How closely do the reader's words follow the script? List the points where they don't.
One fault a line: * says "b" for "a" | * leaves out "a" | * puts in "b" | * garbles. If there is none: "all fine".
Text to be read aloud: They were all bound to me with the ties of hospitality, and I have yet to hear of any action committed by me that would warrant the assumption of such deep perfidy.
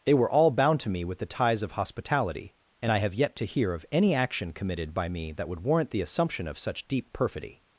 all fine